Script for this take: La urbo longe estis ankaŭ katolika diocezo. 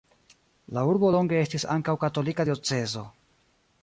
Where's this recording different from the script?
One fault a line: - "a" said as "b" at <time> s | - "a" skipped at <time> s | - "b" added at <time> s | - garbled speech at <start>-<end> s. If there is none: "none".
none